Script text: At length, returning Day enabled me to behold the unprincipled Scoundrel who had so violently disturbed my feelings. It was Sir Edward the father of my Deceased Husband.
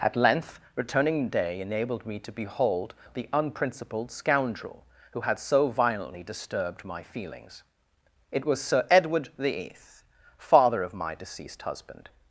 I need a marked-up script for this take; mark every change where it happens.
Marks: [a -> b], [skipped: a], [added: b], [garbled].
At length, returning Day enabled me to behold the unprincipled Scoundrel who had so violently disturbed my feelings. It was Sir Edward the [added: eighth] father of my Deceased Husband.